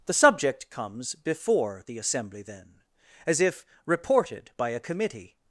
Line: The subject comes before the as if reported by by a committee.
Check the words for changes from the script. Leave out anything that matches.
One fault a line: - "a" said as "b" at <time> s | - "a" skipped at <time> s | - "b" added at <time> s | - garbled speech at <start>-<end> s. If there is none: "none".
- "assembly then" added at 2.0 s
- "by" skipped at 4.7 s